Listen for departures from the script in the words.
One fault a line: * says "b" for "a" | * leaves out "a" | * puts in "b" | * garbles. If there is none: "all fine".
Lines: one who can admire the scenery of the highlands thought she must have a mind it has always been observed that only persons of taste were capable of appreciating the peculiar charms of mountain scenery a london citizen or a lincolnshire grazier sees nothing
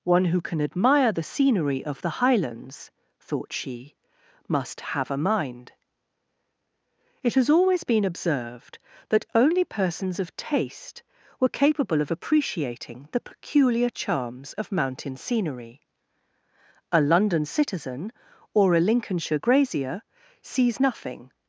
all fine